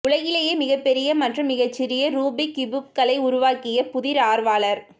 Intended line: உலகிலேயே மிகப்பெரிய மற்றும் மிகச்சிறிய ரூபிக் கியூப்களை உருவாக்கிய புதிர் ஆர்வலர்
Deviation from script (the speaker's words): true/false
false